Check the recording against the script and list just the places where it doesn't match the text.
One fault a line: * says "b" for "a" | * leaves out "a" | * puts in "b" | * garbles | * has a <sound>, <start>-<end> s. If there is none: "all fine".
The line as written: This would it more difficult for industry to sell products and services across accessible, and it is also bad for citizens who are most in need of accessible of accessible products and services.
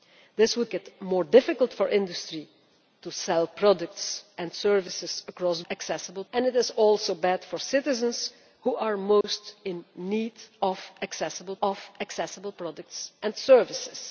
* has a dropout, 9.2-9.2 s